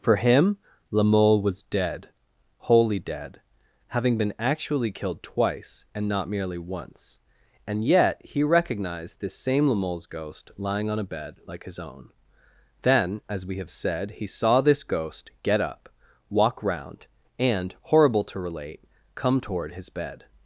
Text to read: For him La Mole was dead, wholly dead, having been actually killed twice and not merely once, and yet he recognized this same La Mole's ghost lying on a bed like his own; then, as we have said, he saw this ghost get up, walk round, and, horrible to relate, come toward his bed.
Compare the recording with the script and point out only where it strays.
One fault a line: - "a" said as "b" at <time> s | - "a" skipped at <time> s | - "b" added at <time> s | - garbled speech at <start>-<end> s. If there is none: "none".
none